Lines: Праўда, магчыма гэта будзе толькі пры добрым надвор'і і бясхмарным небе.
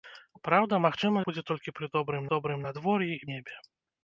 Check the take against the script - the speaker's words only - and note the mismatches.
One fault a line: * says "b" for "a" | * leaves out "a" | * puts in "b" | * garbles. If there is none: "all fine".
* leaves out "гэта"
* puts in "добрым"
* leaves out "бясхмарным"